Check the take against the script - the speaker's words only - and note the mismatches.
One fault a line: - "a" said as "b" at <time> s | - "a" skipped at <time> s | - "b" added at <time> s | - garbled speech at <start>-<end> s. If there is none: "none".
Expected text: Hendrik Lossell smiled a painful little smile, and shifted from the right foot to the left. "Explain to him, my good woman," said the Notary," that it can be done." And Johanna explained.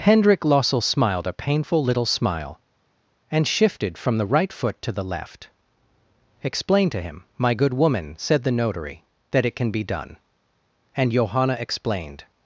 none